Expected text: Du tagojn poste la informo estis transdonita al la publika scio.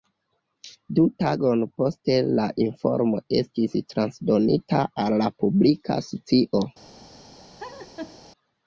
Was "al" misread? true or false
false